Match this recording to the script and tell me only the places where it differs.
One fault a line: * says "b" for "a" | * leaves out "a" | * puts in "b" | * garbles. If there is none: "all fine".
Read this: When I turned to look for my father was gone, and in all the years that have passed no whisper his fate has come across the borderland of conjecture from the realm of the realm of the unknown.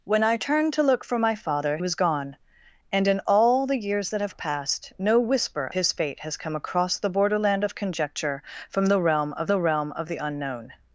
all fine